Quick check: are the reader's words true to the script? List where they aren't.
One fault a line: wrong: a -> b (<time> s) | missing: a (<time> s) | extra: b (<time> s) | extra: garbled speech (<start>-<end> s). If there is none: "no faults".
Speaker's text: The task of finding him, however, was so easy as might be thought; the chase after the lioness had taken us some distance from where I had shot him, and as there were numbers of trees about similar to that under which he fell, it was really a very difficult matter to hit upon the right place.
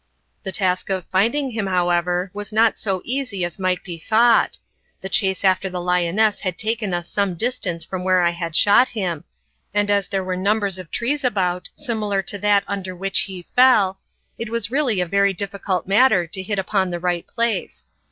extra: not (2.5 s)